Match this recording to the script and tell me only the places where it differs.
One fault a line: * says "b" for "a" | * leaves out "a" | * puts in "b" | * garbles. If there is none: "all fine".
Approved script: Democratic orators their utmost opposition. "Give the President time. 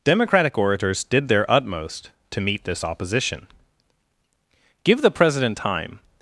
* puts in "did"
* puts in "to meet this"